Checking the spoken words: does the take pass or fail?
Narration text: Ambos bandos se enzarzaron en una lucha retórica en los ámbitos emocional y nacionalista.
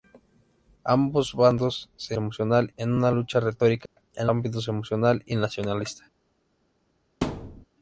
fail